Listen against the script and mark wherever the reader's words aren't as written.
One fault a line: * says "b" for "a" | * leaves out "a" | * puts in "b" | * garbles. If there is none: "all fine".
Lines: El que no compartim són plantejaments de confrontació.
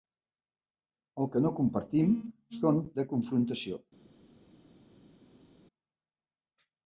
* leaves out "plantejaments"